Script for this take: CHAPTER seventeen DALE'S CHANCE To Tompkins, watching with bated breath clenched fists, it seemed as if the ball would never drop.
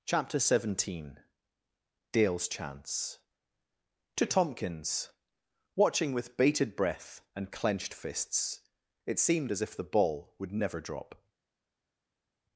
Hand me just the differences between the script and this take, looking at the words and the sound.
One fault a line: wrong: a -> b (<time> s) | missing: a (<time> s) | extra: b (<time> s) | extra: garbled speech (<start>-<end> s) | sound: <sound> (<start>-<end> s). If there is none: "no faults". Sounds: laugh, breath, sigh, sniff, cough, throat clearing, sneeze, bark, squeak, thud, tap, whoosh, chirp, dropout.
extra: and (7.3 s)